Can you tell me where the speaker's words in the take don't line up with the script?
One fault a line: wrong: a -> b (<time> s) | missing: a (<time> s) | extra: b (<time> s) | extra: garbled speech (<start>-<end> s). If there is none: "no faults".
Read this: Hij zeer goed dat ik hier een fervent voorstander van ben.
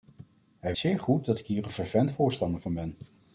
no faults